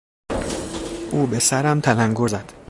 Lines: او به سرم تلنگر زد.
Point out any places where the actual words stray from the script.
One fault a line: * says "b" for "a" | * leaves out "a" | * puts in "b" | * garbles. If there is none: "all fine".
all fine